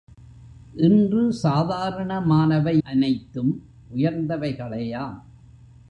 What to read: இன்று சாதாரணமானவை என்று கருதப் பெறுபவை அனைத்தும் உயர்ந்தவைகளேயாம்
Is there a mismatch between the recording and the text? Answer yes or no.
yes